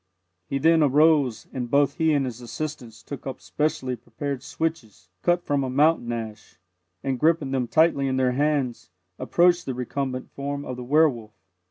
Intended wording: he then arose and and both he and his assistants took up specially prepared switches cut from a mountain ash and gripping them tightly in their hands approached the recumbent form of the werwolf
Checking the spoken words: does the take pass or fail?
fail